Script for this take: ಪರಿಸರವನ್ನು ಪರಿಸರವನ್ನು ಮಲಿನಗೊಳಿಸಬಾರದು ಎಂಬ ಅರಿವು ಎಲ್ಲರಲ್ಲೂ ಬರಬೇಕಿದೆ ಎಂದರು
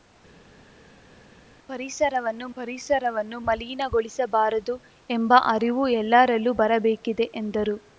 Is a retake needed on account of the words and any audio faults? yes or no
no